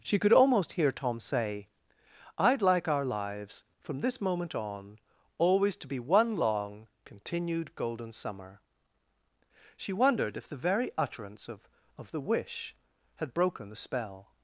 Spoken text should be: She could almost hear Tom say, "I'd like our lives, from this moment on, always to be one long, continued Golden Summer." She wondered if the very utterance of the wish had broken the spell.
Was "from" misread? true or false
false